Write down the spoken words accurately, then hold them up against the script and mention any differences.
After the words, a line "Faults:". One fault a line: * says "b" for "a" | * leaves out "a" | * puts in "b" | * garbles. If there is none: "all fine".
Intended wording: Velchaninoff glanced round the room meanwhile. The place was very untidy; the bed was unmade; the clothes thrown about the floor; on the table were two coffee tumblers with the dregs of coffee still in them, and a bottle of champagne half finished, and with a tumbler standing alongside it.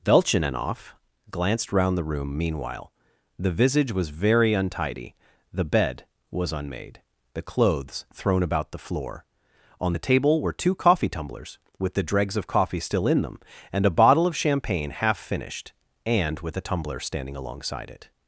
Velchaninoff glanced round the room meanwhile. The visage was very untidy; the bed was unmade; the clothes thrown about the floor; on the table were two coffee tumblers with the dregs of coffee still in them, and a bottle of champagne half finished, and with a tumbler standing alongside it.
Faults:
* says "visage" for "place"